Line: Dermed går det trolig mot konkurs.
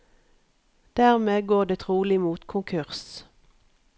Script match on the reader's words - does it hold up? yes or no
yes